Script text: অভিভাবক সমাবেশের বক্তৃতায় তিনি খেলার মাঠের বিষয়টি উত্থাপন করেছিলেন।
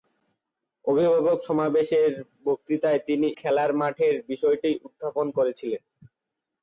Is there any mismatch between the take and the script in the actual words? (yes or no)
no